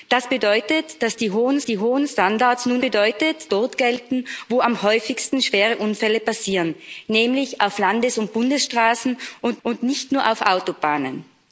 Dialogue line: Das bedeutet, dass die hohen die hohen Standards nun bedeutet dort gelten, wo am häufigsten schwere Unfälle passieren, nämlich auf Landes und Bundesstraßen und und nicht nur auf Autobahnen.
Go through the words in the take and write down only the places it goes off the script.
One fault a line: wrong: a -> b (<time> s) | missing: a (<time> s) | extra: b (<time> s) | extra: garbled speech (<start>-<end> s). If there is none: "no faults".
no faults